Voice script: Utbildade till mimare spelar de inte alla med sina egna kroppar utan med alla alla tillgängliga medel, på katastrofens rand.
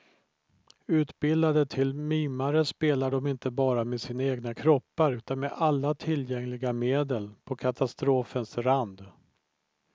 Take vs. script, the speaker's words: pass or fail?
fail